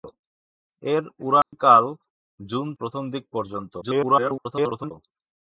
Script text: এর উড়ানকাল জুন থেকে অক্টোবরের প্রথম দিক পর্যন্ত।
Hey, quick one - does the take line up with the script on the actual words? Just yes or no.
no